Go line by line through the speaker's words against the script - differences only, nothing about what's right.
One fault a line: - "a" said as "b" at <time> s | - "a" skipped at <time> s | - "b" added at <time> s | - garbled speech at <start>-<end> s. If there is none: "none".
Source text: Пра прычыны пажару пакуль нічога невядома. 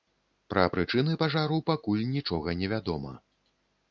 none